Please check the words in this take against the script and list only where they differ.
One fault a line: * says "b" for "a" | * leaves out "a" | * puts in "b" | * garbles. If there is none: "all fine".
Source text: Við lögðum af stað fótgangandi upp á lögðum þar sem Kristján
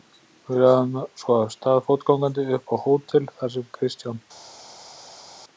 * puts in "svo"
* says "hótel" for "lögðum"